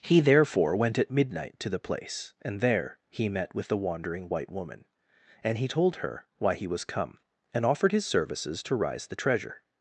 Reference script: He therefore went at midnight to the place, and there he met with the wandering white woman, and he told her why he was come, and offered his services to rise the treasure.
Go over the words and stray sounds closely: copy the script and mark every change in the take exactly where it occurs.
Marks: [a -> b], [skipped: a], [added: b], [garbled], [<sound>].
He therefore went at midnight to the place, and there he met with the wandering white woman, and he told her why he was come, and offered his services to rise the treasure.